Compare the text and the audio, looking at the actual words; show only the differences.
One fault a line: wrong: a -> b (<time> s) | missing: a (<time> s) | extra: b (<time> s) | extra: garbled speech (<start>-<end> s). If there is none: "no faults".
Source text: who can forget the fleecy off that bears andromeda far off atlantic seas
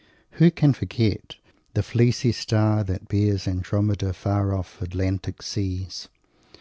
wrong: off -> star (2.3 s)